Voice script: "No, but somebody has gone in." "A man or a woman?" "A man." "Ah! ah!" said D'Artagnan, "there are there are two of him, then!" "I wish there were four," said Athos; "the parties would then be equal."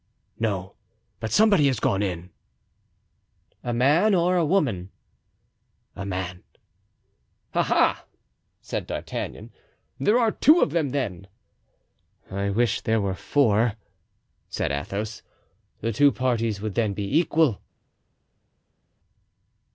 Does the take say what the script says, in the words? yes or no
no